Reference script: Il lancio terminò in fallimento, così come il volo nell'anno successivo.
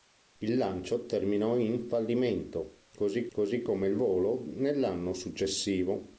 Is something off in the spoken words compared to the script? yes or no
yes